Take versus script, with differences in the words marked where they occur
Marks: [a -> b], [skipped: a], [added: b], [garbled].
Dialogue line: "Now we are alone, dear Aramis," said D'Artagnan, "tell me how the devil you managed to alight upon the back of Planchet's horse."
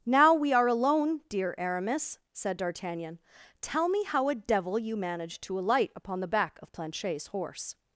"Now we are alone, dear Aramis," said D'Artagnan, "tell me how [the -> a] devil you managed to alight upon the back of Planchet's horse."